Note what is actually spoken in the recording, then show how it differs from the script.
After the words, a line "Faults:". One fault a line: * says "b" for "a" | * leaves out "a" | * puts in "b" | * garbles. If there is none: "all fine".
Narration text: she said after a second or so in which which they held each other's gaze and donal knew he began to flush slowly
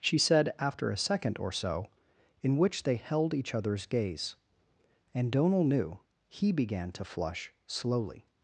she said after a second or so in which they held each other's gaze and donal knew he began to flush slowly
Faults:
* leaves out "which"